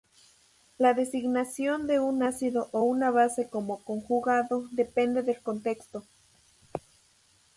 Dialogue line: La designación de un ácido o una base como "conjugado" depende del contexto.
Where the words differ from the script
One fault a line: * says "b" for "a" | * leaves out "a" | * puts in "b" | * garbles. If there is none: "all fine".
all fine